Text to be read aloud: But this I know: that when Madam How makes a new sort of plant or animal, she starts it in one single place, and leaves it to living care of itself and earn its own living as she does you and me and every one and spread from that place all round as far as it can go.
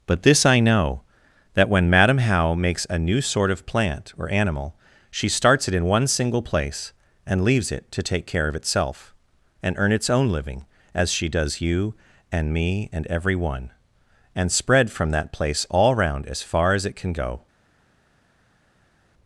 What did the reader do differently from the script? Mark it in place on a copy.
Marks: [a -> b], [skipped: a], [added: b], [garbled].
But this I know: that when Madam How makes a new sort of plant or animal, she starts it in one single place, and leaves it to [living -> take] care of itself and earn its own living as she does you and me and every one and spread from that place all round as far as it can go.